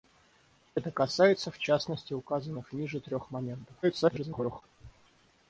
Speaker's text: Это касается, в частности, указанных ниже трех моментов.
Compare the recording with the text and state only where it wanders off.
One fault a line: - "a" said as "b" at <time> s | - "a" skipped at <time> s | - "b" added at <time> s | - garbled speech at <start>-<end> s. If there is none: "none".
- garbled speech at 3.8-4.6 s